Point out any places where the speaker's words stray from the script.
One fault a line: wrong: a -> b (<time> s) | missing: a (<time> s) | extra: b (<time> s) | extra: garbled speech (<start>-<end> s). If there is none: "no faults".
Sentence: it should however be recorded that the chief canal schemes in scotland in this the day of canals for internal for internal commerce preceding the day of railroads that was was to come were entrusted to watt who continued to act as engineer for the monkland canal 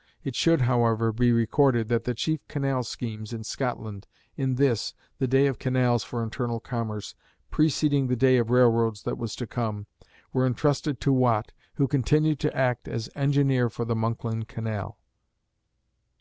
missing: for internal (6.6 s)
missing: was (9.3 s)